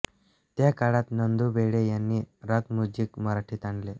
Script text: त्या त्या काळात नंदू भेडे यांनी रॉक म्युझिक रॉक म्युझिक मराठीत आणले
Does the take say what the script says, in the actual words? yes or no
no